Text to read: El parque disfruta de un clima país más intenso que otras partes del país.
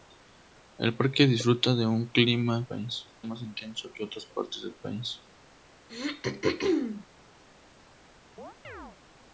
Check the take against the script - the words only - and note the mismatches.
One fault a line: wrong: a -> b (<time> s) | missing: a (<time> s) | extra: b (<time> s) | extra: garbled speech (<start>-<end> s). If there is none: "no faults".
no faults